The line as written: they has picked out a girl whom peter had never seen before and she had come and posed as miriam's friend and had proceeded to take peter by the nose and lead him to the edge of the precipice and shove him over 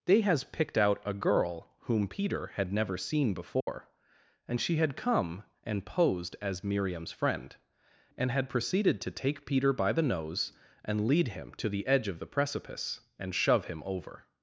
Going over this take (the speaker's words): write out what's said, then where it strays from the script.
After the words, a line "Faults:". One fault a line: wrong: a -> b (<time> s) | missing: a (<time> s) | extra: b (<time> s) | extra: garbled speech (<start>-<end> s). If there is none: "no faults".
they has picked out a girl whom peter had never seen before and she had come and posed as miriam's friend and had proceeded to take peter by the nose and lead him to the edge of the precipice and shove him over
Faults:
no faults